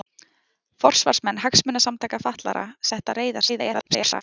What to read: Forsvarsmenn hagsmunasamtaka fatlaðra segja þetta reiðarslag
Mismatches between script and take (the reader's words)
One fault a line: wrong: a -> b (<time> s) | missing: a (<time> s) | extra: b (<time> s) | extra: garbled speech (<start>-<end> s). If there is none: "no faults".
missing: segja (2.6 s)
extra: garbled speech (3.5-4.2 s)